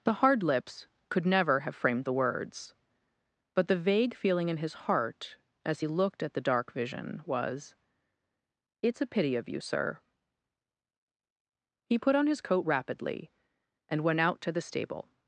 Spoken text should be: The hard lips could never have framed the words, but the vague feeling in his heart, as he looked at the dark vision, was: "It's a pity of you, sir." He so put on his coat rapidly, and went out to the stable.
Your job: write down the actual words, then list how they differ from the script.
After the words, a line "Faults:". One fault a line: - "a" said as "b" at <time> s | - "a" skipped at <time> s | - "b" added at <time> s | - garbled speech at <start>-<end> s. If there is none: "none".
The hard lips could never have framed the words, but the vague feeling in his heart, as he looked at the dark vision, was: "It's a pity of you, sir." He put on his coat rapidly, and went out to the stable.
Faults:
- "so" skipped at 12.0 s